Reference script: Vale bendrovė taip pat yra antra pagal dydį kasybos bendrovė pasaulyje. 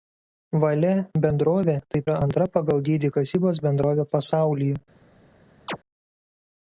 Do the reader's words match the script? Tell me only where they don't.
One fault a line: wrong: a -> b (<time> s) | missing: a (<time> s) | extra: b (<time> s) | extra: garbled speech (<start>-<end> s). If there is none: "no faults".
missing: pat (2.1 s)